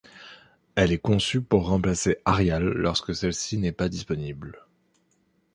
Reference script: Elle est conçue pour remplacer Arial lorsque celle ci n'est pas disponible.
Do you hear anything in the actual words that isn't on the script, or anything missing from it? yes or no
no